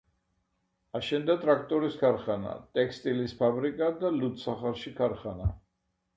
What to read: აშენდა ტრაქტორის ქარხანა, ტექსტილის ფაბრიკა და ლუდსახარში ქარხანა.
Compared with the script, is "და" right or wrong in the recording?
right